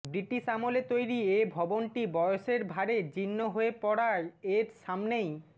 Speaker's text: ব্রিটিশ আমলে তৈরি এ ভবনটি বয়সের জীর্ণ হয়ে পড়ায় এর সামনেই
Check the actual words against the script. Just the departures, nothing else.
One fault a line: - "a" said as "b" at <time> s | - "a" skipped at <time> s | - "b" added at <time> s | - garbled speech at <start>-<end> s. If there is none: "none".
- "ভারে" added at 2.6 s